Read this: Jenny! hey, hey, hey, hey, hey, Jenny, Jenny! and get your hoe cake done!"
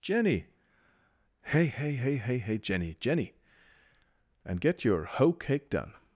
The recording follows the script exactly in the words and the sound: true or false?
true